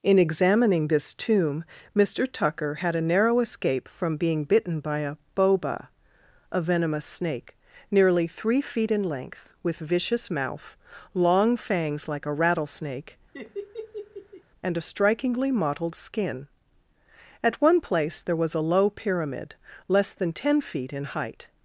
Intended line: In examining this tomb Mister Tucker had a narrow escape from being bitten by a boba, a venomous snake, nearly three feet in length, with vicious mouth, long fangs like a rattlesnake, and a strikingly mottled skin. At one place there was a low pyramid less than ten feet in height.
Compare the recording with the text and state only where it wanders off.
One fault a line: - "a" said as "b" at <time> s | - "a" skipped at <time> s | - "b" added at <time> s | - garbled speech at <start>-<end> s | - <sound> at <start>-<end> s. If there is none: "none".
- laugh at 13.3-14.4 s